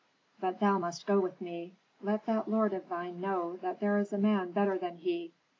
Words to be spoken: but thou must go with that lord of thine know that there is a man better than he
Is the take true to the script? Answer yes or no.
no